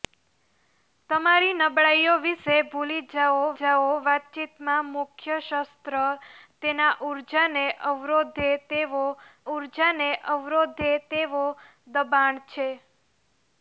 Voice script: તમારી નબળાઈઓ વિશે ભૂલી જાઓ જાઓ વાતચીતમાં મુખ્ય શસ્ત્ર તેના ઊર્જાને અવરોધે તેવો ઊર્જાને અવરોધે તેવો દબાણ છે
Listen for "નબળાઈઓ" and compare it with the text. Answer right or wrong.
right